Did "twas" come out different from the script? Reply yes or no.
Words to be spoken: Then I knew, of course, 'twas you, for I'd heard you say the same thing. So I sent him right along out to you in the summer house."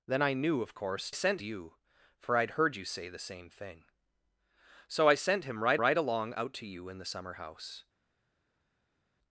yes